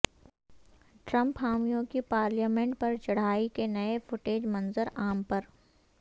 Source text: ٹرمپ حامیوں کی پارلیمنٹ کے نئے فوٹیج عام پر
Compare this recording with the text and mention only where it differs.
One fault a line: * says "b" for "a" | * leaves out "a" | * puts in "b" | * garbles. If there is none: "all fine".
* puts in "پر چڑھائی"
* puts in "منظر"